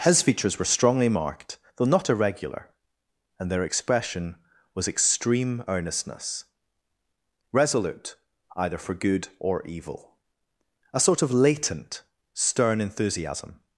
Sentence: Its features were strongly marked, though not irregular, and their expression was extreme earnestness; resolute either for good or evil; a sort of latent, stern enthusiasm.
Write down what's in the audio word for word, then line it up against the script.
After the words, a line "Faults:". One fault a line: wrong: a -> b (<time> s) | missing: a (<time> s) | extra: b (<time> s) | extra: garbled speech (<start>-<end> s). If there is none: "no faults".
His features were strongly marked, though not irregular, and their expression was extreme earnestness; resolute either for good or evil; a sort of latent, stern enthusiasm.
Faults:
wrong: Its -> His (0.0 s)